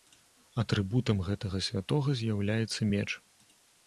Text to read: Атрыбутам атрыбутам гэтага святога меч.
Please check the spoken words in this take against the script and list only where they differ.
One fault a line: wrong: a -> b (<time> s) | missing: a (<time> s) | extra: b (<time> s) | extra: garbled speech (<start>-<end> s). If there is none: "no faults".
missing: атрыбутам (1.2 s)
extra: з'яўляецца (2.2 s)